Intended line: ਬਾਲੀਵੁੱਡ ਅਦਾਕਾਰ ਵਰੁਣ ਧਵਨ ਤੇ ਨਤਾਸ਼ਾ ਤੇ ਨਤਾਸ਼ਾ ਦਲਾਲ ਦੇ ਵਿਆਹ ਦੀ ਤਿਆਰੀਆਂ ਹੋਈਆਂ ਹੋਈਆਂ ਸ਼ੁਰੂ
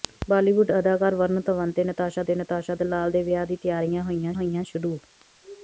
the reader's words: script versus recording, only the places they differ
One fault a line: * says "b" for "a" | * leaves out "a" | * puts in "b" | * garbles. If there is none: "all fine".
all fine